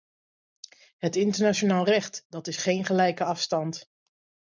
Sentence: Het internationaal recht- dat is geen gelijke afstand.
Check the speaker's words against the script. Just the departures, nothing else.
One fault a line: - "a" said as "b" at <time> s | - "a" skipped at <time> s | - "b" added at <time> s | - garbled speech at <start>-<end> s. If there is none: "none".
none